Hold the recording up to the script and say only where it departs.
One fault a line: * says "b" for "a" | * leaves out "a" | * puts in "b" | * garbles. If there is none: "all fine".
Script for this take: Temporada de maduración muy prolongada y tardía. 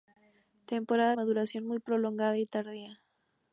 * leaves out "de"